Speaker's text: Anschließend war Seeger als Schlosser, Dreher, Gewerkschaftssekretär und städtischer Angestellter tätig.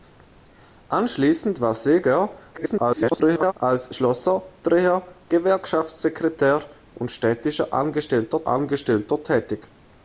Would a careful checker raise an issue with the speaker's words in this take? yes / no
yes